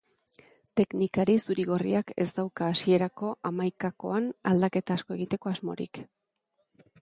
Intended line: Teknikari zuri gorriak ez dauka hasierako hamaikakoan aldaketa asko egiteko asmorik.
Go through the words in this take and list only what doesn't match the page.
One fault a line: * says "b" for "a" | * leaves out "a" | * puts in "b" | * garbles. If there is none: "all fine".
all fine